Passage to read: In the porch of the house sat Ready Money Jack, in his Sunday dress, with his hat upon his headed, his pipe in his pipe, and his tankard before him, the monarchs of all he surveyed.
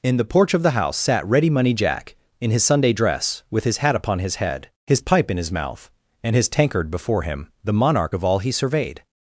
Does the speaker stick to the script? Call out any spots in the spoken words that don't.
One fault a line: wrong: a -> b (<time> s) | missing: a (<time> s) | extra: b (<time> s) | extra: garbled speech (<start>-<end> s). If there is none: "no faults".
wrong: headed -> head (4.4 s)
wrong: pipe -> mouth (5.5 s)
wrong: monarchs -> monarch (7.7 s)